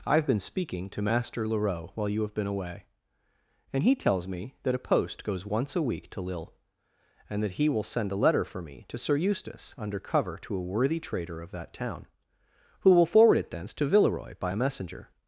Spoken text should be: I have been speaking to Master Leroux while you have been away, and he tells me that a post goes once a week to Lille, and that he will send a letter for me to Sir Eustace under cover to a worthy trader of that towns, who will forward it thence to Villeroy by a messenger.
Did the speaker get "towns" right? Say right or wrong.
wrong